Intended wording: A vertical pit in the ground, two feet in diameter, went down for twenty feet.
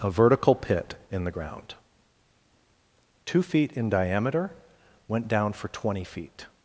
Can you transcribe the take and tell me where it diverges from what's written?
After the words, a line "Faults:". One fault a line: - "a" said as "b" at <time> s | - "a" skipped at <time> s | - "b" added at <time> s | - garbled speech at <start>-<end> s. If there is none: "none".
A vertical pit in the ground, two feet in diameter, went down for twenty feet.
Faults:
none